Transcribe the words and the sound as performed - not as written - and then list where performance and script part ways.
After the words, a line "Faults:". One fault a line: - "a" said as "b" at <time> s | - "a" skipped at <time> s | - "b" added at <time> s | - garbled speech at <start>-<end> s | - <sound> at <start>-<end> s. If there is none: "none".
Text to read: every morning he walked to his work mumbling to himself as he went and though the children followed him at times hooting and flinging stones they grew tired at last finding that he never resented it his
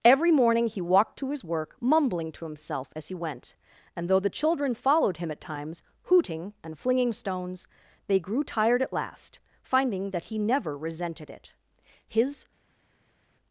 every morning he walked to his work mumbling to himself as he went and though the children followed him at times hooting and flinging stones they grew tired at last finding that he never resented it his
Faults:
none